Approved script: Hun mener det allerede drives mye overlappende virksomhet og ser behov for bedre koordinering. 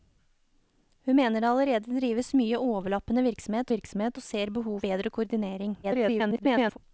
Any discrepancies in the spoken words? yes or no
yes